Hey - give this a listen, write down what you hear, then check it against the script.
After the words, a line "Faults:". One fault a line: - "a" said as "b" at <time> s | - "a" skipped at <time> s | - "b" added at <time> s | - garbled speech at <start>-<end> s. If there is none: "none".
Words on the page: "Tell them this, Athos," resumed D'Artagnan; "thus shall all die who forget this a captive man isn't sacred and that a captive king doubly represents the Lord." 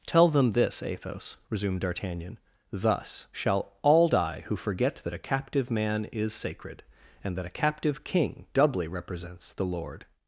"Tell them this, Athos," resumed D'Artagnan; "thus shall all die who forget that a captive man is sacred and that a captive king doubly represents the Lord."
Faults:
- "this" said as "that" at 5.0 s
- "isn't" said as "is" at 6.1 s